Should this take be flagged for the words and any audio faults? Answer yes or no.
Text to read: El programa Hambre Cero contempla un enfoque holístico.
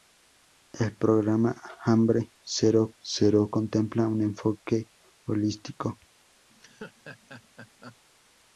yes